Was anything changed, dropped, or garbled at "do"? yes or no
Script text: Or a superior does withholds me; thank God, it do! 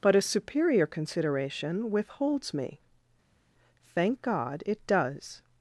yes